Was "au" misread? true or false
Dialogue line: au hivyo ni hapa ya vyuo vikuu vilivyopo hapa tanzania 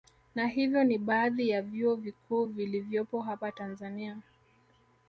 true